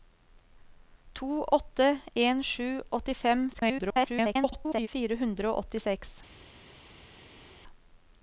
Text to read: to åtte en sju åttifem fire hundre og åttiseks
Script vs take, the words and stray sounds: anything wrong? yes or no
yes